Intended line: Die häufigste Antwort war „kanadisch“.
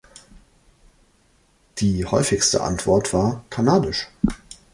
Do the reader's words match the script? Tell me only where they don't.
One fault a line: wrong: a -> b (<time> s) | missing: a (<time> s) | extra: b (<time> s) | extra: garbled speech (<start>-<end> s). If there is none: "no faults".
no faults